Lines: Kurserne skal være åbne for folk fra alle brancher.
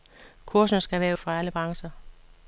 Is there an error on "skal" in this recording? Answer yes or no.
no